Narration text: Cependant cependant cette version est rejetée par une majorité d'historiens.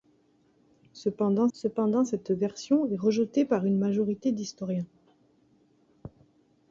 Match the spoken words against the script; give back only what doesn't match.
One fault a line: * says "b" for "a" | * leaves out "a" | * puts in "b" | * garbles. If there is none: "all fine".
all fine